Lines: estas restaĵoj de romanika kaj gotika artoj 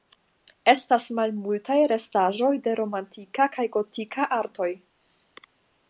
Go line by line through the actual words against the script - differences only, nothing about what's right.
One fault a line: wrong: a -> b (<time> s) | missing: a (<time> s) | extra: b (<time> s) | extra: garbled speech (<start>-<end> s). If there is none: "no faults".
extra: malmultaj (1.2 s)